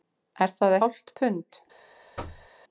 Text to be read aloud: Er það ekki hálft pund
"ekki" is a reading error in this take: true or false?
true